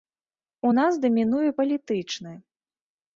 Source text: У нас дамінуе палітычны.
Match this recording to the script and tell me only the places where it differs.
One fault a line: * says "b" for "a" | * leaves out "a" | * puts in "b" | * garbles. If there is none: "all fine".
all fine